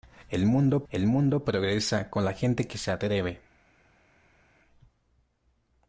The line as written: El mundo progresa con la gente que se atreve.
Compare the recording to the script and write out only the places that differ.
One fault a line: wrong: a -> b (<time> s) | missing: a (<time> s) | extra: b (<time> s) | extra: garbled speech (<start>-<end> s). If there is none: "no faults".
extra: el mundo (0.9 s)